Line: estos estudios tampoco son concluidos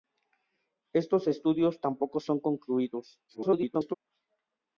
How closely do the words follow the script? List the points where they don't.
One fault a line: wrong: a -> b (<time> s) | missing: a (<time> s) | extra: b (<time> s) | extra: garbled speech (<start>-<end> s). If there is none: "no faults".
extra: garbled speech (3.3-3.9 s)